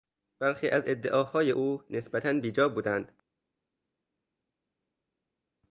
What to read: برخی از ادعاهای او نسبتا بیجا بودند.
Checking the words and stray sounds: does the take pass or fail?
pass